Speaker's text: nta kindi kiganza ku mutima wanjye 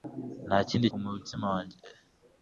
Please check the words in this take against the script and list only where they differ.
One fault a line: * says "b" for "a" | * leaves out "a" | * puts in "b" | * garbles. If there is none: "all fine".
* leaves out "kiganza"